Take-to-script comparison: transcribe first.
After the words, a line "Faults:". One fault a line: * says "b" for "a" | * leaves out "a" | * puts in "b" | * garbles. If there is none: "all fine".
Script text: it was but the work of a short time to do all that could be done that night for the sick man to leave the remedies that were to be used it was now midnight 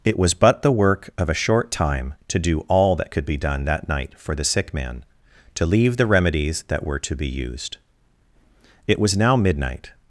it was but the work of a short time to do all that could be done that night for the sick man to leave the remedies that were to be used it was now midnight
Faults:
all fine